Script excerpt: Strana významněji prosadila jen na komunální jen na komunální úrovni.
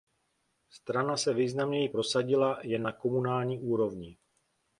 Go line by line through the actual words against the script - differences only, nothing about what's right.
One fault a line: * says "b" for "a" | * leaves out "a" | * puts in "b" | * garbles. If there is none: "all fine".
* puts in "se"
* leaves out "jen na komunální"